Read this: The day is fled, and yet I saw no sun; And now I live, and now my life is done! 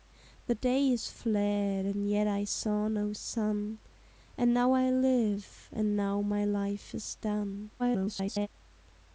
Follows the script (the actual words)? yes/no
no